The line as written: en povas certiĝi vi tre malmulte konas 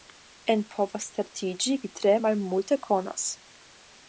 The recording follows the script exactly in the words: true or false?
true